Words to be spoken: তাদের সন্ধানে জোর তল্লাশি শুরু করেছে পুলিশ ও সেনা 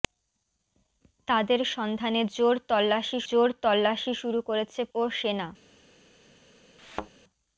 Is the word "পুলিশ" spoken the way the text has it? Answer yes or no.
no